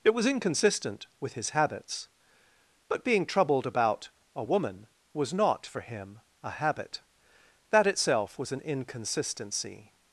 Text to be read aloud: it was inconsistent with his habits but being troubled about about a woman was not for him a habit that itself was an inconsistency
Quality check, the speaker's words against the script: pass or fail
fail